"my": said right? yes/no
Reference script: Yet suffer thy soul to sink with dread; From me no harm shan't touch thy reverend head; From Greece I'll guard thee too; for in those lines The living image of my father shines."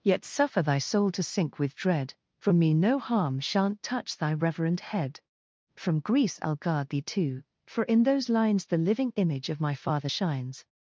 yes